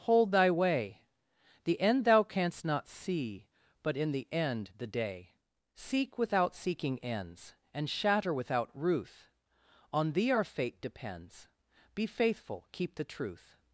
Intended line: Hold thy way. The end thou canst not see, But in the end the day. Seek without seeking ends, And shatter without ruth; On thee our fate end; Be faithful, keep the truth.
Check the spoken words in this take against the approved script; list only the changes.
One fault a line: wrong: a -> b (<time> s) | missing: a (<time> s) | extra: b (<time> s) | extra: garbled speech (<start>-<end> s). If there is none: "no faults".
wrong: end -> depends (10.8 s)